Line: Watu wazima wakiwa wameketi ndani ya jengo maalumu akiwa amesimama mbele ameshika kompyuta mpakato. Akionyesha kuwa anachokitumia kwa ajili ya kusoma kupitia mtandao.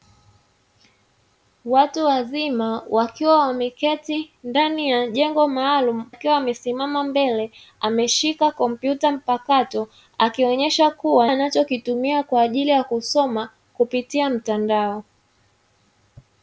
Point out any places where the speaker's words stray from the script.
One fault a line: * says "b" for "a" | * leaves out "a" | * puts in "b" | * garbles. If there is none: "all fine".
all fine